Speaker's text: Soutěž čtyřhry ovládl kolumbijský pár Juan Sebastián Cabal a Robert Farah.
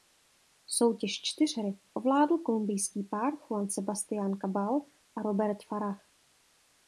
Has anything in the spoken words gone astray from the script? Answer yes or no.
no